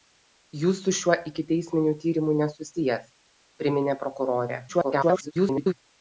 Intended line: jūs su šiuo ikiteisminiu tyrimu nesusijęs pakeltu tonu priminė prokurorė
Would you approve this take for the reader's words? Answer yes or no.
no